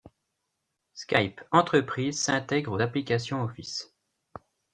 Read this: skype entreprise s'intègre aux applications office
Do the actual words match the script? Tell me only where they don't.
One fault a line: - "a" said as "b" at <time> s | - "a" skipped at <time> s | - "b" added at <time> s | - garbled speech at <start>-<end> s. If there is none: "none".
none